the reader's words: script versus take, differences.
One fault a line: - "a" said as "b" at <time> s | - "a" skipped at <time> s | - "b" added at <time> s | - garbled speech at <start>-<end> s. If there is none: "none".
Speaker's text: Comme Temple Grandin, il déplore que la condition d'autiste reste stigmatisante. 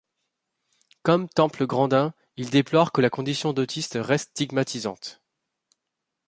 none